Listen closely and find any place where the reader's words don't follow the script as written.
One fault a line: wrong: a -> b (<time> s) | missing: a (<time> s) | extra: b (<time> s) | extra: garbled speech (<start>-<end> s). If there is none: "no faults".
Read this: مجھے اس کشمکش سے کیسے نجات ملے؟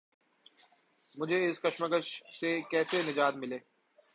no faults